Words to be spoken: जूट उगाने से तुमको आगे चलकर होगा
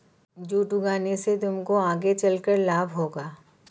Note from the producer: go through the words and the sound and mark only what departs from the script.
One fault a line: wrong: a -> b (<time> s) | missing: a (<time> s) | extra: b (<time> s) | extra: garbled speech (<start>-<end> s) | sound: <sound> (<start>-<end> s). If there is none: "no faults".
extra: लाभ (2.6 s)